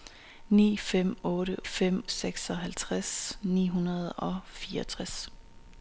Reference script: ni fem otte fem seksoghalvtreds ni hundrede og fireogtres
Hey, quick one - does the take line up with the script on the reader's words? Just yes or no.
yes